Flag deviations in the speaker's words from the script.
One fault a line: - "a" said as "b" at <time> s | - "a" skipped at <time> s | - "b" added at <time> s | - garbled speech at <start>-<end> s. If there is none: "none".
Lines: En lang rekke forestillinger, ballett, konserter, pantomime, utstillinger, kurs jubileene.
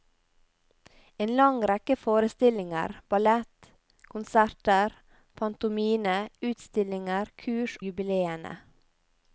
none